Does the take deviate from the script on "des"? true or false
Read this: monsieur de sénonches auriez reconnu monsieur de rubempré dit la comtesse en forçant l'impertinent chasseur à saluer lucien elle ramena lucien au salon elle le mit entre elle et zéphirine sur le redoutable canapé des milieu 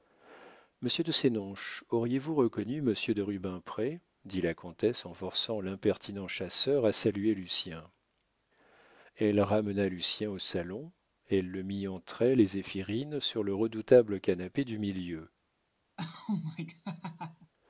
true